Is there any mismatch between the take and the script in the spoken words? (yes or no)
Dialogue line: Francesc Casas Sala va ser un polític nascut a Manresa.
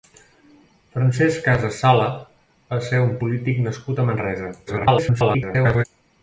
yes